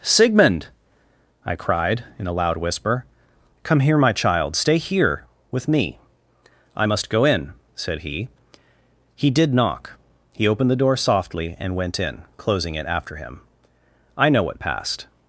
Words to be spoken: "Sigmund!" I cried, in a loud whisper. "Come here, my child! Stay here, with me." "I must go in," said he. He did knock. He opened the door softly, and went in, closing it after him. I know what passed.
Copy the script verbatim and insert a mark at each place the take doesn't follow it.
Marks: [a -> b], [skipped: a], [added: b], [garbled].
"Sigmund!" I cried, in a loud whisper. "Come here, my child! Stay here, with me." "I must go in," said he. He did knock. He opened the door softly, and went in, closing it after him. I know what passed.